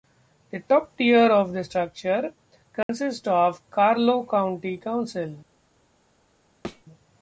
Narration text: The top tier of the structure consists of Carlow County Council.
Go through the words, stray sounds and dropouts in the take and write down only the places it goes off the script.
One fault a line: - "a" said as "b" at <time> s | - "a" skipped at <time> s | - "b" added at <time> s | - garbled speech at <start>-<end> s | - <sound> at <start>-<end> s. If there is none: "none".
- dropout at 2.8-2.9 s
- thud at 6.6-6.8 s